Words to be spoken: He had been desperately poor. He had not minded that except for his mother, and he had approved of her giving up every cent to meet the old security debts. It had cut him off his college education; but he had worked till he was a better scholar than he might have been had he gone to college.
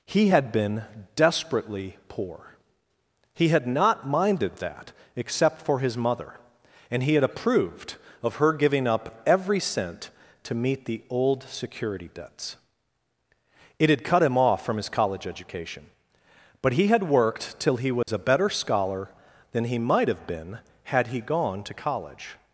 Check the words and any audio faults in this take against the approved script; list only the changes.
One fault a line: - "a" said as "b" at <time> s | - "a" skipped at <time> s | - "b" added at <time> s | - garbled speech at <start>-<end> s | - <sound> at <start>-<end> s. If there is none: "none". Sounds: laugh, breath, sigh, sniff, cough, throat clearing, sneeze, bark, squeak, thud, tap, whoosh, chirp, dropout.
- "from" added at 14.6 s
- dropout at 18.0-18.1 s